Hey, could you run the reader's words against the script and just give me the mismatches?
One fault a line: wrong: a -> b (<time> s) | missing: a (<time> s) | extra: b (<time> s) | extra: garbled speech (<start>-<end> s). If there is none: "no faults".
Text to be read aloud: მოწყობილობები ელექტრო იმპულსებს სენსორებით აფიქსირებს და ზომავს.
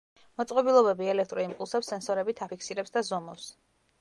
no faults